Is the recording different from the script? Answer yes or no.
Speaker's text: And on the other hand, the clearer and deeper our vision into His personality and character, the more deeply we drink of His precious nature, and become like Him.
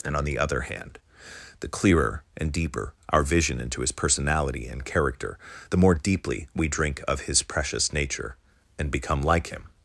no